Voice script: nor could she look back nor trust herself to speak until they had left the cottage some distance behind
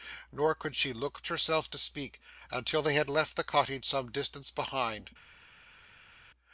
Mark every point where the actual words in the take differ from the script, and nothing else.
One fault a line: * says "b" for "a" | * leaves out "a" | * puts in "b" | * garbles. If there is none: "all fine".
* leaves out "back nor trust"